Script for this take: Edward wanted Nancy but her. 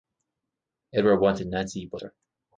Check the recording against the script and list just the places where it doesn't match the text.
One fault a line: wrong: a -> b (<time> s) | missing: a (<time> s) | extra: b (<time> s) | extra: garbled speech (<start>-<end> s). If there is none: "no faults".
no faults